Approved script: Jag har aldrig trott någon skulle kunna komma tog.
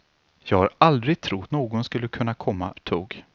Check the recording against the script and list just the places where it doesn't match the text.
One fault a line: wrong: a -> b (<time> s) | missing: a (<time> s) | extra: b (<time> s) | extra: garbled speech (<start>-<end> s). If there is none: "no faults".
no faults